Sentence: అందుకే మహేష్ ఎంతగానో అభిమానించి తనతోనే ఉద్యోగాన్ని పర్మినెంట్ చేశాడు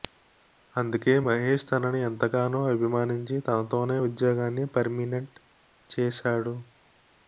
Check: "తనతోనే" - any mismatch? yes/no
no